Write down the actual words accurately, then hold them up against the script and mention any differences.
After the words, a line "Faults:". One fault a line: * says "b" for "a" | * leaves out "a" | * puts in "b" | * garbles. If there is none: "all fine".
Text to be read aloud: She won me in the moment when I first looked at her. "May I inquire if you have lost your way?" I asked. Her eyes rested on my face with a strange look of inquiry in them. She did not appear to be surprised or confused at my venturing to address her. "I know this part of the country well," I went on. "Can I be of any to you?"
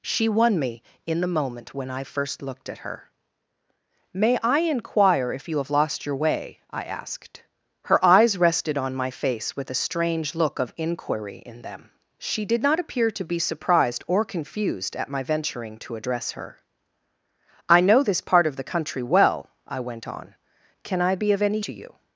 She won me in the moment when I first looked at her. "May I inquire if you have lost your way?" I asked. Her eyes rested on my face with a strange look of inquiry in them. She did not appear to be surprised or confused at my venturing to address her. "I know this part of the country well," I went on. "Can I be of any to you?"
Faults:
all fine